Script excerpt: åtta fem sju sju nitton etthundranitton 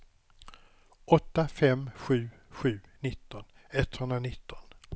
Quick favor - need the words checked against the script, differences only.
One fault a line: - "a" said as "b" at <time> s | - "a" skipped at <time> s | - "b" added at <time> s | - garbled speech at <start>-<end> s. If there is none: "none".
none